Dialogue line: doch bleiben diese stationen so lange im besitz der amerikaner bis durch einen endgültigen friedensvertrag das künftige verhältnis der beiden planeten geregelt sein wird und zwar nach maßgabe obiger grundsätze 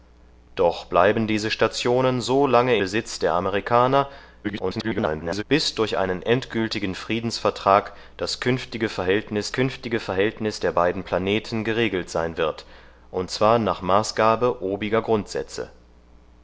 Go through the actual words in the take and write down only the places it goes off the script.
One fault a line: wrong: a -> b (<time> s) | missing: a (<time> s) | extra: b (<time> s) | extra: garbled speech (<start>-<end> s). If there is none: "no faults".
missing: im (2.8 s)
extra: garbled speech (4.4-5.4 s)
extra: künftige verhältnis (9.5 s)